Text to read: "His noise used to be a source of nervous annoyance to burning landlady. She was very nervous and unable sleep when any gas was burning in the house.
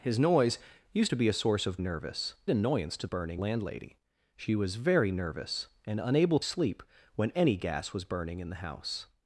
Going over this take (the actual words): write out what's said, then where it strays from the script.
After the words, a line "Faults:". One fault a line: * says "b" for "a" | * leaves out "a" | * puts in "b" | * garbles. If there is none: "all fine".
"His noise used to be a source of nervous annoyance to burning landlady. She was very nervous and unable sleep when any gas was burning in the house.
Faults:
all fine